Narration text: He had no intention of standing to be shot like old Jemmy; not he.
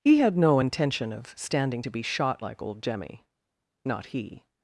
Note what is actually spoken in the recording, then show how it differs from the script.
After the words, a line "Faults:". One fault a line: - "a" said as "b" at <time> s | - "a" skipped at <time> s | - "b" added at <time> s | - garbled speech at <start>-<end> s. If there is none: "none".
He had no intention of standing to be shot like old Jemmy; not he.
Faults:
none